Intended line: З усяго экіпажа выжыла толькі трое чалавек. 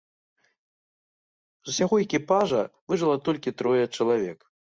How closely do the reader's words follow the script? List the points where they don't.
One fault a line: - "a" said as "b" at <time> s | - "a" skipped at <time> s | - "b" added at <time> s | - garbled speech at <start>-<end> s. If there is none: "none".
none